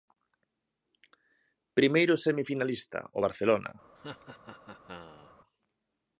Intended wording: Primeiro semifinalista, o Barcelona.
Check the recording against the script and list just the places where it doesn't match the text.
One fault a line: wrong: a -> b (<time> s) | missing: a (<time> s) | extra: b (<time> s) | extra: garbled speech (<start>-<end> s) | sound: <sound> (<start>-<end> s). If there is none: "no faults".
sound: laugh (4.0-5.3 s)